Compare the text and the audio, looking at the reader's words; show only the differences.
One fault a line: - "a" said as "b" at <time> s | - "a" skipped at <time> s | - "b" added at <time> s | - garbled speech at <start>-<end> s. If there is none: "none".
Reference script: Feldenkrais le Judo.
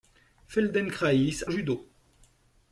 none